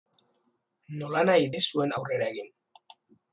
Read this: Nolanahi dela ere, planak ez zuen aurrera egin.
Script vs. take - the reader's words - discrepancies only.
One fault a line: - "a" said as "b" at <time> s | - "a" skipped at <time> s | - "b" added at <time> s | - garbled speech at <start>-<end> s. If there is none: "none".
- "dela ere planak" skipped at 1.5 s